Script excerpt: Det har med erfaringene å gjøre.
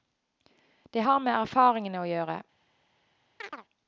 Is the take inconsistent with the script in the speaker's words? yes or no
no